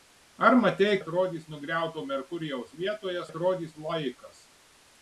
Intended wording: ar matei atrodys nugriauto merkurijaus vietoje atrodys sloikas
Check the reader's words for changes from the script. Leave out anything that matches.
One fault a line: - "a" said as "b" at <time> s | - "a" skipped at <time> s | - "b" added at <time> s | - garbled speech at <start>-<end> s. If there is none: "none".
none